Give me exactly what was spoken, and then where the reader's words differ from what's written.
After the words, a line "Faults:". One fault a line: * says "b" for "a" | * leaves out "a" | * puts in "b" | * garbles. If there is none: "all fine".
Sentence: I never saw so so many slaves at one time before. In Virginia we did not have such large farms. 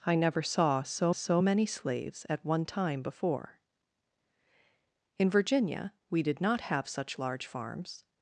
I never saw so so many slaves at one time before. In Virginia we did not have such large farms.
Faults:
all fine